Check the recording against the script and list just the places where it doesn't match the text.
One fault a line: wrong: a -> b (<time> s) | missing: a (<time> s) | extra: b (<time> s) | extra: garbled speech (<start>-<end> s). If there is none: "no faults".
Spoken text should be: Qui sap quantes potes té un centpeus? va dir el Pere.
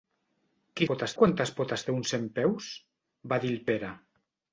wrong: sap -> potes (0.9 s)